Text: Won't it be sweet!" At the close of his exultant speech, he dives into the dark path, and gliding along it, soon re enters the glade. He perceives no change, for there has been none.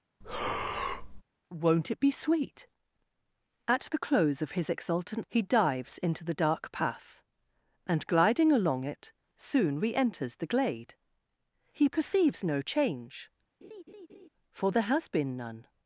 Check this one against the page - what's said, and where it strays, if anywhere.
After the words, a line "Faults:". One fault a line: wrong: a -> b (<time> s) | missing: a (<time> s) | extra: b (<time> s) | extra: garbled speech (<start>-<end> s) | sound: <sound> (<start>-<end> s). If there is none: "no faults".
Won't it be sweet!" At the close of his exultant he dives into the dark path, and gliding along it, soon re enters the glade. He perceives no change, for there has been none.
Faults:
sound: breath (0.2-1.2 s)
missing: speech (5.3 s)
sound: laugh (13.6-14.3 s)